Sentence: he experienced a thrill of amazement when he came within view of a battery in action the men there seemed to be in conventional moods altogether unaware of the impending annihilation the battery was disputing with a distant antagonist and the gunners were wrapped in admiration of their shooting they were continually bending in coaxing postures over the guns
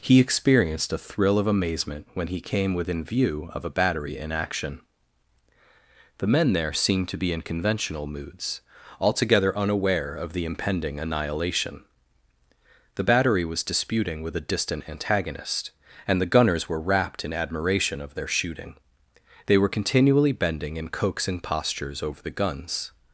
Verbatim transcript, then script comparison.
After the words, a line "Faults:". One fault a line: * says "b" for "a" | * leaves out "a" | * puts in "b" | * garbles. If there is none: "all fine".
he experienced a thrill of amazement when he came within view of a battery in action the men there seemed to be in conventional moods altogether unaware of the impending annihilation the battery was disputing with a distant antagonist and the gunners were wrapped in admiration of their shooting they were continually bending in coaxing postures over the guns
Faults:
all fine